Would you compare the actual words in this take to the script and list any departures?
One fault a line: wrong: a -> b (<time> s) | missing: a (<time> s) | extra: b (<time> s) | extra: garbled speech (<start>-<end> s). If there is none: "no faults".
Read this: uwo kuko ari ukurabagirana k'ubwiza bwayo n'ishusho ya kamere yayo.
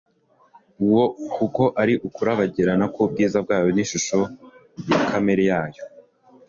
no faults